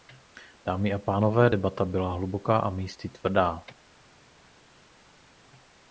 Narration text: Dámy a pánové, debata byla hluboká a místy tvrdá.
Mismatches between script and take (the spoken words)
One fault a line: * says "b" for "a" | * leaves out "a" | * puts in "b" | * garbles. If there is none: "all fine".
all fine